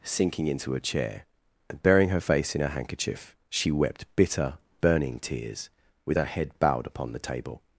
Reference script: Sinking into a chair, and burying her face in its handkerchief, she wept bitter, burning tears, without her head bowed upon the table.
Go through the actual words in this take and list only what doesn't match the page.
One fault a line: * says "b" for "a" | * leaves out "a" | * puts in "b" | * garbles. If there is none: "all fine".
* says "her" for "its"
* says "with" for "without"